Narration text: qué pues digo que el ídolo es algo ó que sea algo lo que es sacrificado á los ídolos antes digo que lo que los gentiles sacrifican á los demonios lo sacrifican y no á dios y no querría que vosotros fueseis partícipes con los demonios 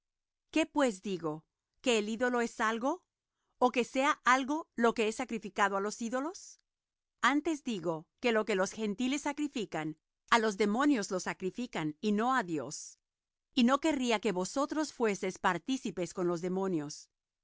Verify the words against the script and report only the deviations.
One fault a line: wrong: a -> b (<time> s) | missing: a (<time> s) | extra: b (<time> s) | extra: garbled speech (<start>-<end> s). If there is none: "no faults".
no faults